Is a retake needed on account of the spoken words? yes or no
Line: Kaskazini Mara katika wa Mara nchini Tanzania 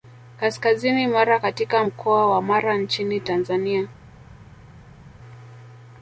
yes